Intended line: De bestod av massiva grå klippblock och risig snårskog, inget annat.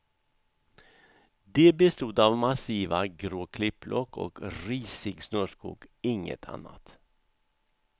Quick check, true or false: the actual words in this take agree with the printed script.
true